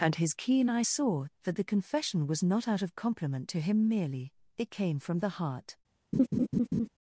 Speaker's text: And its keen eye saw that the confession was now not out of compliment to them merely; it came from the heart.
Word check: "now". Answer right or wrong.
wrong